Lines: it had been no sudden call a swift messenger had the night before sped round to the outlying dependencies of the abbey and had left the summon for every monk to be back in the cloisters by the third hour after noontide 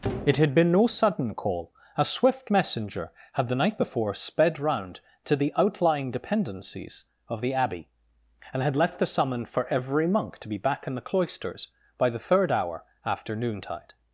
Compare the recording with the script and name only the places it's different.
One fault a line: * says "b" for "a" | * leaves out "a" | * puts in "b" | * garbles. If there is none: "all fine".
all fine